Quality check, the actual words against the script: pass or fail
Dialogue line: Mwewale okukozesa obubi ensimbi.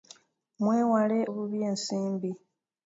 fail